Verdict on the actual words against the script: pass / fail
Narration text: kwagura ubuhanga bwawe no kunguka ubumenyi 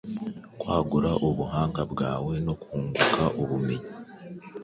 pass